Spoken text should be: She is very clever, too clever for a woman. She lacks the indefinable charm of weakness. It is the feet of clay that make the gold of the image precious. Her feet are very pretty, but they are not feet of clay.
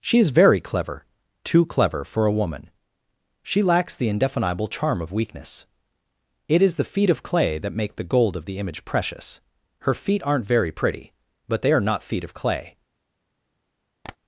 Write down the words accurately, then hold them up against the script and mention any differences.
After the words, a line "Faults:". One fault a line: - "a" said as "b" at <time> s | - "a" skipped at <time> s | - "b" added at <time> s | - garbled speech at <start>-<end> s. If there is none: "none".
She is very clever, too clever for a woman. She lacks the indefinable charm of weakness. It is the feet of clay that make the gold of the image precious. Her feet aren't very pretty, but they are not feet of clay.
Faults:
- "are" said as "aren't" at 10.2 s